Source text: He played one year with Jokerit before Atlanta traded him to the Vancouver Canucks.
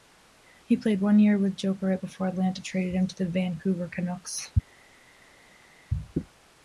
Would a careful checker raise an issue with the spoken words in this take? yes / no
no